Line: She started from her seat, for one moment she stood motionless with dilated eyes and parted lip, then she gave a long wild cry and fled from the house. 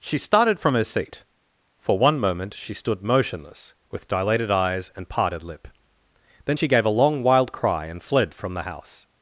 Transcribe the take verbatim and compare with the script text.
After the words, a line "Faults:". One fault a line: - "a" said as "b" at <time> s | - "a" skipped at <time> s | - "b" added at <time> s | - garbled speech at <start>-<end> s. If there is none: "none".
She started from her seat, for one moment she stood motionless with dilated eyes and parted lip, then she gave a long wild cry and fled from the house.
Faults:
none